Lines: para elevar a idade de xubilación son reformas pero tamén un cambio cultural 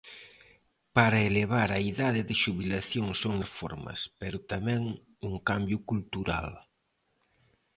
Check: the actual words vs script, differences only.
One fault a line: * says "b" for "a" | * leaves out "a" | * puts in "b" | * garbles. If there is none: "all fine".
all fine